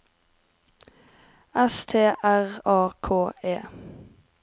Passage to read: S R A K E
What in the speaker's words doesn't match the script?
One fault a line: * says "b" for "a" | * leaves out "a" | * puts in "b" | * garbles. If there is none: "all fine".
* puts in "T"